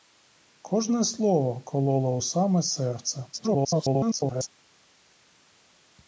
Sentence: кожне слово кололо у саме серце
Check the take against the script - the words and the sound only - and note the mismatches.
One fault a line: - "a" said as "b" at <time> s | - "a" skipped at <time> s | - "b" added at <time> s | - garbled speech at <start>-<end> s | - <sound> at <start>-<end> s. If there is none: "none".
- garbled speech at 3.3-4.5 s